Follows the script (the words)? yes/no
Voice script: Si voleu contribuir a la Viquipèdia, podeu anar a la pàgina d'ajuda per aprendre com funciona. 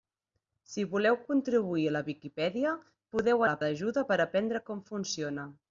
no